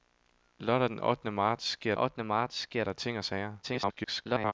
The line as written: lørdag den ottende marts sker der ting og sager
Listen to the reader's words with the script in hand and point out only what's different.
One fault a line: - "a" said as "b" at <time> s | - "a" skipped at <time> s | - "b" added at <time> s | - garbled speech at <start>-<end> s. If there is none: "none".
- "ottende marts sker" added at 1.9 s
- garbled speech at 3.6-4.5 s